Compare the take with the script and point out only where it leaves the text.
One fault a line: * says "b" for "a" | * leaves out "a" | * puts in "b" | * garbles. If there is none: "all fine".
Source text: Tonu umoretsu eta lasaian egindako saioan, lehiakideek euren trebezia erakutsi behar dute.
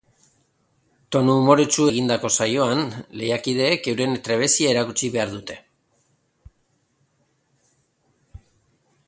* leaves out "eta lasaian"